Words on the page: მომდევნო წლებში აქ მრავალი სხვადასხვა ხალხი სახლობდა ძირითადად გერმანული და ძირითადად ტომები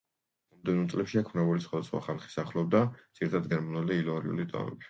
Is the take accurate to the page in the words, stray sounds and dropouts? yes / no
no